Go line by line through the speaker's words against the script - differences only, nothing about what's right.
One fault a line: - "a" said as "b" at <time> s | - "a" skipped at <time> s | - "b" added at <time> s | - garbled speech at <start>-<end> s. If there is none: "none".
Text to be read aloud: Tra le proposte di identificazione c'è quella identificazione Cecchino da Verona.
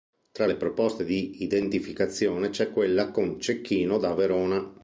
- "identificazione" said as "con" at 3.1 s